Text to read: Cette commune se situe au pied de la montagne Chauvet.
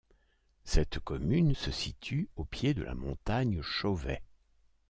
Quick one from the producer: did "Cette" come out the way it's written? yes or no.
yes